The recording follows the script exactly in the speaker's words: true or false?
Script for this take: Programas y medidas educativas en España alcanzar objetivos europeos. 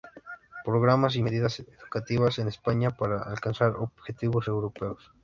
false